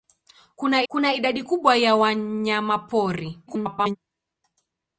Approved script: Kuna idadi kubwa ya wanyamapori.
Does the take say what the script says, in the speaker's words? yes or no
no